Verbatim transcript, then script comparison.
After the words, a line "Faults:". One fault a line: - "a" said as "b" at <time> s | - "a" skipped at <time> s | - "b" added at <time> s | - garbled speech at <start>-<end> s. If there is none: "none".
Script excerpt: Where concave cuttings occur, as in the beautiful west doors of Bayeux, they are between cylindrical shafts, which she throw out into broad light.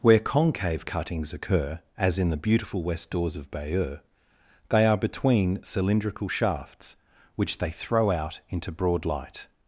Where concave cuttings occur, as in the beautiful west doors of Bayeux, they are between cylindrical shafts, which they throw out into broad light.
Faults:
- "she" said as "they" at 7.6 s